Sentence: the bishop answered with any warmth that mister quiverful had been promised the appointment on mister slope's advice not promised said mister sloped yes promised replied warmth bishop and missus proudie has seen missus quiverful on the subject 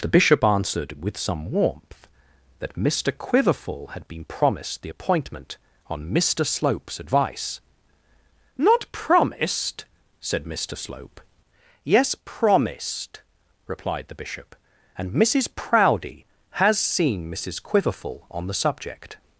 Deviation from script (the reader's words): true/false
true